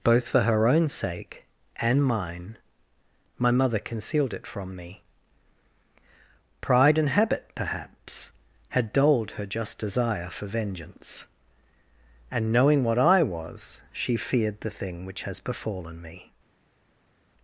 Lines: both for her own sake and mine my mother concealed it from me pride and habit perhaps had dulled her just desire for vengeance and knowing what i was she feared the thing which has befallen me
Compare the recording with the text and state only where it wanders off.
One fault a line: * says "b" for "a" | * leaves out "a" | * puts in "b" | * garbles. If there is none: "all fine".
all fine